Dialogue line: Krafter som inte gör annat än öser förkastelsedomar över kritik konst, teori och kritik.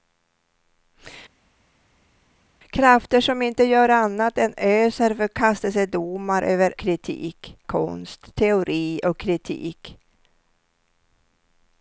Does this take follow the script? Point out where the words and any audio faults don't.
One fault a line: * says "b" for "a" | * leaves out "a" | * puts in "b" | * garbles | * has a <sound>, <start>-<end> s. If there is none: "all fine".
all fine